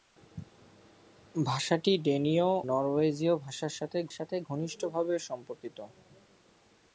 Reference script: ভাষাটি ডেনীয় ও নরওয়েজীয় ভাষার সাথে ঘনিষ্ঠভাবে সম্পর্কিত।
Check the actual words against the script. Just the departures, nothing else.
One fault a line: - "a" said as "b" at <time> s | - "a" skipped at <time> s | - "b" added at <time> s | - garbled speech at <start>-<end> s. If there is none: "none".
- "ও" skipped at 2.5 s
- "সাথে" added at 4.1 s